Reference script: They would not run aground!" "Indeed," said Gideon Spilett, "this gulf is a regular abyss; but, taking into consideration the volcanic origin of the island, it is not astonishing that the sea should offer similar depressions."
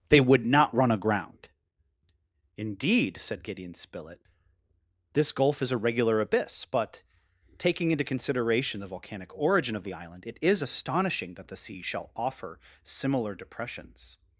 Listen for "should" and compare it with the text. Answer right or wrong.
wrong